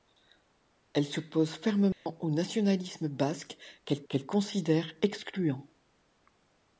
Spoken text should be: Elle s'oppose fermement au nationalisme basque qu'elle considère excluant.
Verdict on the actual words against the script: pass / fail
fail